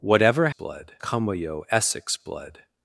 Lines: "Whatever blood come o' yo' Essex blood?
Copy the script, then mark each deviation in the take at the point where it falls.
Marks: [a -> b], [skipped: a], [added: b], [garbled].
"Whatever blood come o' yo' Essex blood?